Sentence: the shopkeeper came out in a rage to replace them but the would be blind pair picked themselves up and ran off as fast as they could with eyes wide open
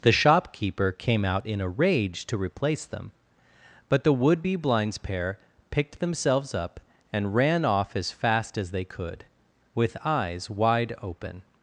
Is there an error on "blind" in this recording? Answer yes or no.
yes